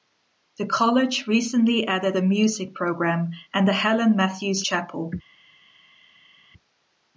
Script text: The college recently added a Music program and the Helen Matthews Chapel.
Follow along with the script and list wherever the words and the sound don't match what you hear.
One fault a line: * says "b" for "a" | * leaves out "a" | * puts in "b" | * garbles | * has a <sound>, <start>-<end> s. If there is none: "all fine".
all fine